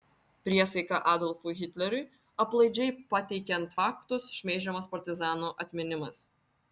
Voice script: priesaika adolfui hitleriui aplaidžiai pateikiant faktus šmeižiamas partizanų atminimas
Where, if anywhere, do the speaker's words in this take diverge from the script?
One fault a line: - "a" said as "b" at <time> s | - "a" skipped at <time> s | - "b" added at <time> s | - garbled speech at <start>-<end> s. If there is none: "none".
none